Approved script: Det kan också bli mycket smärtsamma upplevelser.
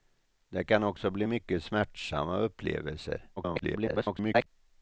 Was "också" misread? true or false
false